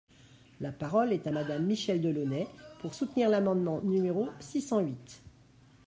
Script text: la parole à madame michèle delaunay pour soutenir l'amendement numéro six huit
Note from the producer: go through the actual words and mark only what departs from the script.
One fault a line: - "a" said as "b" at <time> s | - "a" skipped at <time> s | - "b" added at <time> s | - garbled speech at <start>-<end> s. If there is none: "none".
- "est" added at 1.1 s
- "cent" added at 4.6 s